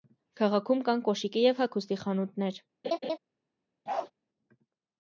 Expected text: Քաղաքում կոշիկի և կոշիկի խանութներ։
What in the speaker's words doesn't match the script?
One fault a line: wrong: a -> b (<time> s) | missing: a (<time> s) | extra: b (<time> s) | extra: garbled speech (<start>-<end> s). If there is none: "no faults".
extra: կան (0.9 s)
wrong: կոշիկի -> հագուստի (1.6 s)